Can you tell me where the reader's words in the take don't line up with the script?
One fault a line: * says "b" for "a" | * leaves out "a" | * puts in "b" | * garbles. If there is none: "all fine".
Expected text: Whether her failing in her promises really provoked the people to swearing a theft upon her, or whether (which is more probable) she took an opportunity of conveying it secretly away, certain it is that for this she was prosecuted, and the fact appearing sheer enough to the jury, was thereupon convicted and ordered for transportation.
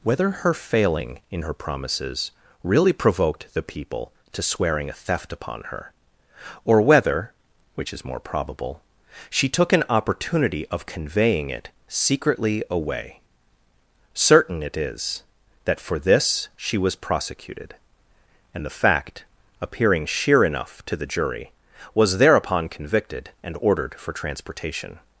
all fine